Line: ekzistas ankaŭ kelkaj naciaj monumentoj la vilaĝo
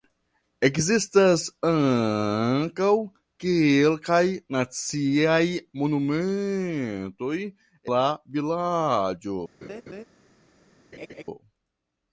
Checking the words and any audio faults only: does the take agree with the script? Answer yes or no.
no